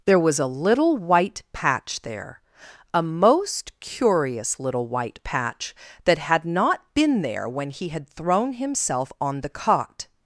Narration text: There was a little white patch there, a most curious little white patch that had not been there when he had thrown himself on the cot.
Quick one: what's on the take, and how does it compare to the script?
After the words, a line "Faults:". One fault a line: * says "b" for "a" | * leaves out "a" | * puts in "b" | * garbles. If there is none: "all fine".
There was a little white patch there, a most curious little white patch that had not been there when he had thrown himself on the cot.
Faults:
all fine